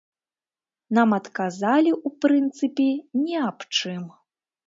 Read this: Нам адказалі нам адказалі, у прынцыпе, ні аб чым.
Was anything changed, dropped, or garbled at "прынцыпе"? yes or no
no